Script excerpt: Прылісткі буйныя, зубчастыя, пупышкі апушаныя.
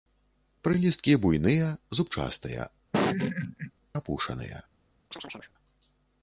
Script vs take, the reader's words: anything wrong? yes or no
yes